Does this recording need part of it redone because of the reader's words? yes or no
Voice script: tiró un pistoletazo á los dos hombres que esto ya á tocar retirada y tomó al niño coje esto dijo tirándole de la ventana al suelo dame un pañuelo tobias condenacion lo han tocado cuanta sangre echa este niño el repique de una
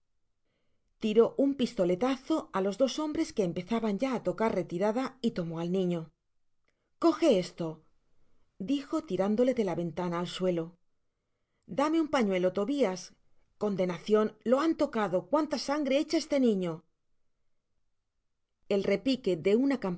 yes